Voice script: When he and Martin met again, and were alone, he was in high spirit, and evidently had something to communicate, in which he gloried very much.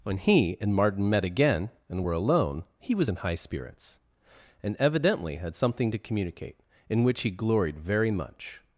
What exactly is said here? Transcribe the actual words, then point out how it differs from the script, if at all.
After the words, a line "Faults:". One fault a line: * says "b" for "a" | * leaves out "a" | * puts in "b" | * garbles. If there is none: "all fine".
When he and Martin met again, and were alone, he was in high spirits, and evidently had something to communicate, in which he gloried very much.
Faults:
* says "spirits" for "spirit"